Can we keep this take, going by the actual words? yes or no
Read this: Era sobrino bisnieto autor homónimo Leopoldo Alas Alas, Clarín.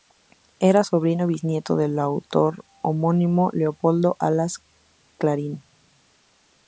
no